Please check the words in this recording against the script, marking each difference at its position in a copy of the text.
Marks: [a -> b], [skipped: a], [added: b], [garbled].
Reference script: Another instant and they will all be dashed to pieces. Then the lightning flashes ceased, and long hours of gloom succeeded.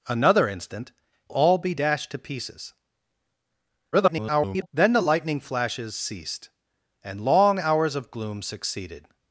Another instant [skipped: and they will] all be dashed to pieces. [garbled] Then the lightning flashes ceased, and long hours of gloom succeeded.